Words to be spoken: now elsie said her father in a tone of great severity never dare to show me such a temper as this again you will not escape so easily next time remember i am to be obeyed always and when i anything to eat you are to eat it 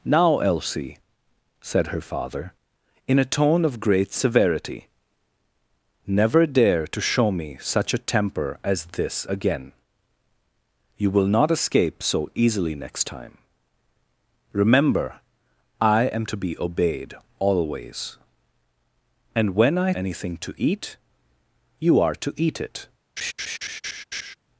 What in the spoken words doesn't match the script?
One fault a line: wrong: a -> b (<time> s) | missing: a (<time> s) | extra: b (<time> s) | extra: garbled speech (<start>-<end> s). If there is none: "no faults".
no faults